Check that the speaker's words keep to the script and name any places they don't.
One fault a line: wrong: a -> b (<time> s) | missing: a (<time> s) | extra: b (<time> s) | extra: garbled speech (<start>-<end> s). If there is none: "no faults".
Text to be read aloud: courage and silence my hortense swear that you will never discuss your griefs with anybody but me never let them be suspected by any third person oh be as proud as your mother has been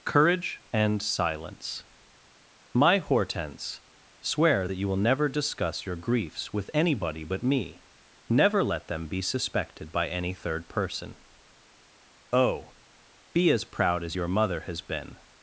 no faults